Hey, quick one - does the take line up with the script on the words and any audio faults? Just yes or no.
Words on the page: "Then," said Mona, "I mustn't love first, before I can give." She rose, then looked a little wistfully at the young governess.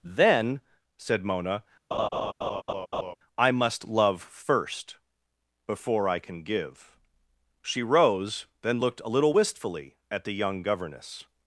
no